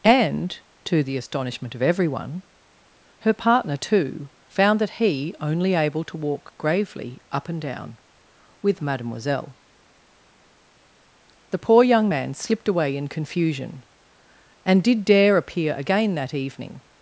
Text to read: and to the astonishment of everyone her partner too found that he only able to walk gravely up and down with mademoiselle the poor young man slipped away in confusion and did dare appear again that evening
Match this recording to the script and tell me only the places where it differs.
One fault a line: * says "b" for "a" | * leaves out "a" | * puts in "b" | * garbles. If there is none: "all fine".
all fine